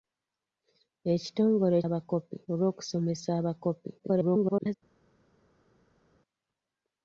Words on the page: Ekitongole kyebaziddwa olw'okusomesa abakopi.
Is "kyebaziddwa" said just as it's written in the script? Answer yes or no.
no